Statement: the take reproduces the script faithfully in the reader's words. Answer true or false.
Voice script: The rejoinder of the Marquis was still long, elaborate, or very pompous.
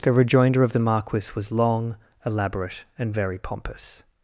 false